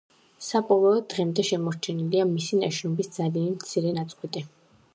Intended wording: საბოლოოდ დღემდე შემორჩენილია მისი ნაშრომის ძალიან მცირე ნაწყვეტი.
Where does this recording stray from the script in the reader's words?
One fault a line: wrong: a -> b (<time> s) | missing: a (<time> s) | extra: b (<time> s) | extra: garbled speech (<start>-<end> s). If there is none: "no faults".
no faults